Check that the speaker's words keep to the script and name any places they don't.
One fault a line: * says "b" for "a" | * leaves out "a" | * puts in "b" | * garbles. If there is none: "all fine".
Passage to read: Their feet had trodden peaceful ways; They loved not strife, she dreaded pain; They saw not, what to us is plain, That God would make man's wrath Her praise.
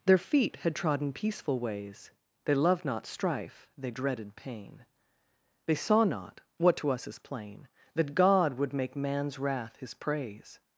* says "they" for "she"
* says "His" for "Her"